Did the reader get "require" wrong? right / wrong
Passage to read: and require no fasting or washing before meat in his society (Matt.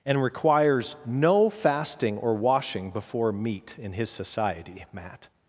wrong